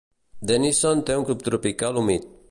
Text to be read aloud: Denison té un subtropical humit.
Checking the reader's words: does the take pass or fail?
pass